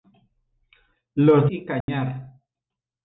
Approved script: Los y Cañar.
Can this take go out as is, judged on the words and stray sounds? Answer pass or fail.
fail